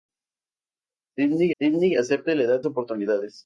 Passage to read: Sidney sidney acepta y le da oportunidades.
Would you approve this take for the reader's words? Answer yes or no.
yes